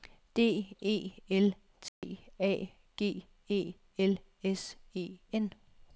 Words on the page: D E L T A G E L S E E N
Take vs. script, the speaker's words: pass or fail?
fail